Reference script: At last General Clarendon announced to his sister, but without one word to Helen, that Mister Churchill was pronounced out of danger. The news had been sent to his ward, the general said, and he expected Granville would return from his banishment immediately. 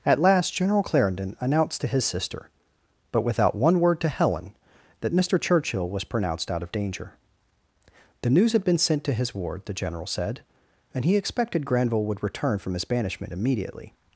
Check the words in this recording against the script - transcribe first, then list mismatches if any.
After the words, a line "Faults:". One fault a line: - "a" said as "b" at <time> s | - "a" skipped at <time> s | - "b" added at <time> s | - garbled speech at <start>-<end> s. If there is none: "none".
At last General Clarendon announced to his sister, but without one word to Helen, that Mister Churchill was pronounced out of danger. The news had been sent to his ward, the general said, and he expected Granville would return from his banishment immediately.
Faults:
none